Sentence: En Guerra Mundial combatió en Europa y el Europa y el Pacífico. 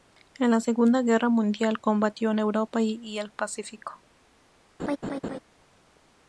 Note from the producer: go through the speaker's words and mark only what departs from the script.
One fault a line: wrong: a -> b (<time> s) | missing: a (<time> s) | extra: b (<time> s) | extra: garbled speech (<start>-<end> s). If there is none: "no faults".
extra: la Segunda (0.5 s)
missing: Europa y el (3.3 s)